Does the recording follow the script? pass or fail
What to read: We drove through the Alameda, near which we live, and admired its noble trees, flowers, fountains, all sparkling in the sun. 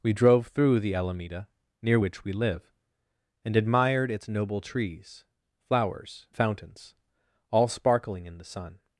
pass